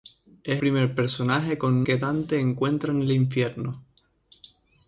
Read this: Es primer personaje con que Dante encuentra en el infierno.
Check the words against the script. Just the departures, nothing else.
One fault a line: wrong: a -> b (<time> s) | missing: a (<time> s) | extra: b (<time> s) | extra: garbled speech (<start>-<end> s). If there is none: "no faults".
no faults